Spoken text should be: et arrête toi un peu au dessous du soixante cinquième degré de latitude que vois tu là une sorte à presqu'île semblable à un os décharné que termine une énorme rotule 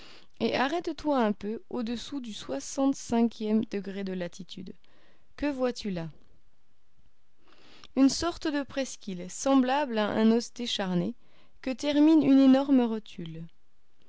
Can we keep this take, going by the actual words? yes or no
no